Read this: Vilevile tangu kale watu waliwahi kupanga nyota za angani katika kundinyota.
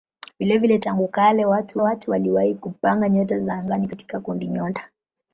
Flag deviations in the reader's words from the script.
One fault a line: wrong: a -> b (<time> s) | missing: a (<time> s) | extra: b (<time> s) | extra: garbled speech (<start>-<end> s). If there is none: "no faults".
extra: watu (1.8 s)